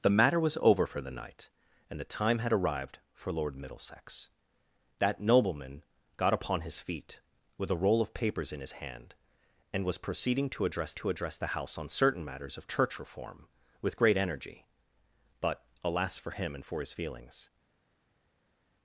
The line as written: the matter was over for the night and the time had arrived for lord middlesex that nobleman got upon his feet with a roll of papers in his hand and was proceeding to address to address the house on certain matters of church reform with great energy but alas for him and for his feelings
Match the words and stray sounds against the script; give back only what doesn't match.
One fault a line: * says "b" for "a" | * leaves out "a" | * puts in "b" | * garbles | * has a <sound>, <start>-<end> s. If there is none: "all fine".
all fine